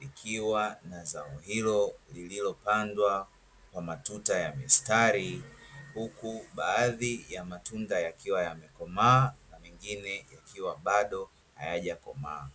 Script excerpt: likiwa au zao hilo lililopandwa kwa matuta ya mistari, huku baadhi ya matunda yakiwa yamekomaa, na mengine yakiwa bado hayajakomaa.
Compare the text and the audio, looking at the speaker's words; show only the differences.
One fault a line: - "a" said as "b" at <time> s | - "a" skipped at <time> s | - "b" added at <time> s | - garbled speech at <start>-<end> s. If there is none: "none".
- "au" said as "na" at 0.8 s